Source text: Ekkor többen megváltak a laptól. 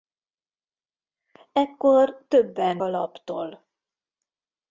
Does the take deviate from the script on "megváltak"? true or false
true